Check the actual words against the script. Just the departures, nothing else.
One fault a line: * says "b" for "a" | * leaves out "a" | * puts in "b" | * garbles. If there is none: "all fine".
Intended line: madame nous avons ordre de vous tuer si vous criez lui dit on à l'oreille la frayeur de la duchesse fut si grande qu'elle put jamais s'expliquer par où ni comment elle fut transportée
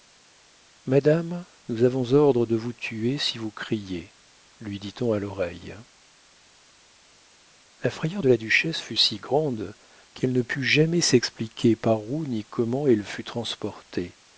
* puts in "ne"